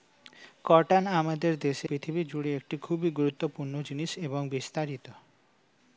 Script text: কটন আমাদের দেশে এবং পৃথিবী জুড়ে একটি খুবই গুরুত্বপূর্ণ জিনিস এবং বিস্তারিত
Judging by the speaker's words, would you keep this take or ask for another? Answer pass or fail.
fail